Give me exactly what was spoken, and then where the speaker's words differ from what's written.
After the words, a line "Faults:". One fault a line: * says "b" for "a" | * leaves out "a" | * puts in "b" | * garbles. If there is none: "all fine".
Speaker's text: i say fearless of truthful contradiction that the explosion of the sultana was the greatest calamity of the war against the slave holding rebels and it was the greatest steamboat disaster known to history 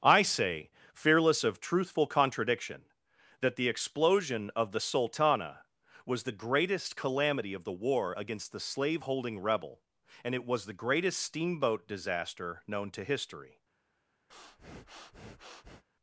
i say fearless of truthful contradiction that the explosion of the sultana was the greatest calamity of the war against the slave holding rebel and it was the greatest steamboat disaster known to history
Faults:
* says "rebel" for "rebels"